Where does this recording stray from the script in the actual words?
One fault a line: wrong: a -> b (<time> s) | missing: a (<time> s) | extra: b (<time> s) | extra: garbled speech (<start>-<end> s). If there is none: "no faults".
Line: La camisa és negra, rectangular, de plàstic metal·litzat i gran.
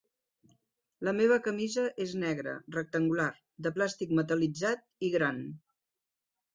extra: meva (1.2 s)